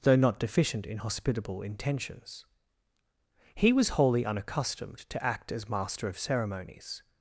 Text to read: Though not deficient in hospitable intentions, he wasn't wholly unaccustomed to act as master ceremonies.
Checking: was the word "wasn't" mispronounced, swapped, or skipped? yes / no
yes